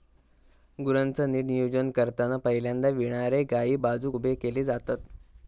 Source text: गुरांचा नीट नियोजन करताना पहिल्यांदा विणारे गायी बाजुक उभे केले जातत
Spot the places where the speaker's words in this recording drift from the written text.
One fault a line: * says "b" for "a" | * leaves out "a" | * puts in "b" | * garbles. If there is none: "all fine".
all fine